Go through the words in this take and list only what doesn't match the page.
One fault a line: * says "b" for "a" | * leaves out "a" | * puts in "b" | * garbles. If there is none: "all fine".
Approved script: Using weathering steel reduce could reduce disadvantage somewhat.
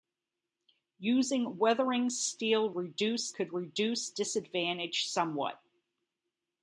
all fine